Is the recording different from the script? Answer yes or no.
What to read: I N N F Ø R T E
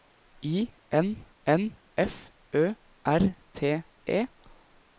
no